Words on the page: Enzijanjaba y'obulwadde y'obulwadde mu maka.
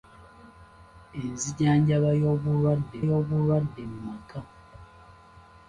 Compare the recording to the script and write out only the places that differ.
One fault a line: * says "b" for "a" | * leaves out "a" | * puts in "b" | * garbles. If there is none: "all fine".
all fine